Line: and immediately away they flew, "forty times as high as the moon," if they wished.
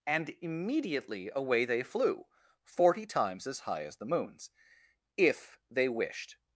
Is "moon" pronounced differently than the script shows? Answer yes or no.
yes